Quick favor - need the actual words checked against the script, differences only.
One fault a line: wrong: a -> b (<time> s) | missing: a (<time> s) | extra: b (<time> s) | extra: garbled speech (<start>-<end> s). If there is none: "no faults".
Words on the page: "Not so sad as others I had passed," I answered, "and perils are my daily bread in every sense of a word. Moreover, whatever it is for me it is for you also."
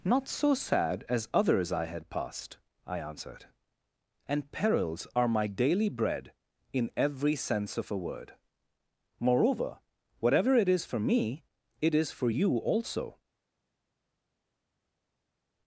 no faults